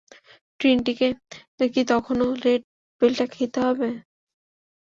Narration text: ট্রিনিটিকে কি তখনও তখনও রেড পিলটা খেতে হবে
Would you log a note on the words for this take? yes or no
yes